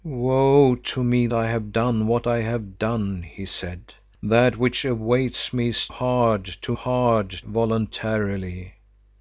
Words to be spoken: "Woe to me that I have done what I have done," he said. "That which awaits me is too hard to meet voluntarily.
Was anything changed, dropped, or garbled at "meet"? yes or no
yes